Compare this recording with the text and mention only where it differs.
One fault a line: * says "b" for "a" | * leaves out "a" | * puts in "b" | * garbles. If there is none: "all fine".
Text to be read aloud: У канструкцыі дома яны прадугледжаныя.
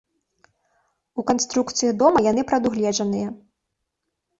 all fine